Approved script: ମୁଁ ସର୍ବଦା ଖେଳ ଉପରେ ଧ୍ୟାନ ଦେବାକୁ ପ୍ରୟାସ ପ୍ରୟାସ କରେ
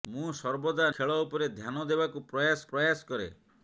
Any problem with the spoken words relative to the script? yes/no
no